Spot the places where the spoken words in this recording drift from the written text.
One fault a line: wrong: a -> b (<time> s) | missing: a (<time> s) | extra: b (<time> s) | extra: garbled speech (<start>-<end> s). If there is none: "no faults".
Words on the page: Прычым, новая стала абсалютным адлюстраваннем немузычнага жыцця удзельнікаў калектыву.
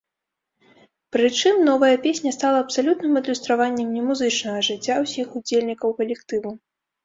extra: песня (2.1 s)
extra: ўсіх (5.1 s)